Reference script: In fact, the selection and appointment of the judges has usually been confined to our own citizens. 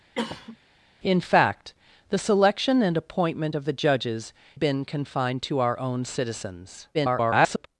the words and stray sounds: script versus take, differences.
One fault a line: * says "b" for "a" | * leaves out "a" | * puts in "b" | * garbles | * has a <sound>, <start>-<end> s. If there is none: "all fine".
* has a cough, 0.2-0.6 s
* leaves out "has usually"
* garbles